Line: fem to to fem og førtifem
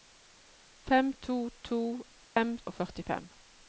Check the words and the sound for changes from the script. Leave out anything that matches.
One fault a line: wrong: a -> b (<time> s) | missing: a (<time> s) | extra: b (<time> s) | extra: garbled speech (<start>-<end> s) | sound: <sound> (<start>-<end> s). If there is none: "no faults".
sound: dropout (2.2-2.4 s)